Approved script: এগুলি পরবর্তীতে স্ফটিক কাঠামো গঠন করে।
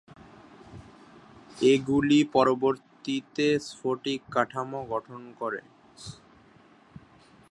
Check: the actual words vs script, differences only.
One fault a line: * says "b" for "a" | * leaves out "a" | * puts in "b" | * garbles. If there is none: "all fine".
all fine